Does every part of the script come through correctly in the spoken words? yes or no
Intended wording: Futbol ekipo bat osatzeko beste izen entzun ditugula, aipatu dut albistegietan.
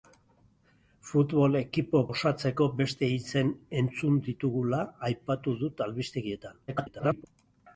no